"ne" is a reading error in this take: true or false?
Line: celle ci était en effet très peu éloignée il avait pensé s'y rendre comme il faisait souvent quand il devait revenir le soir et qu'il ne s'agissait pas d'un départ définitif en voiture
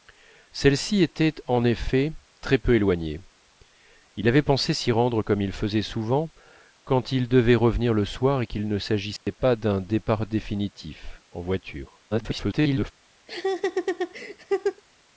false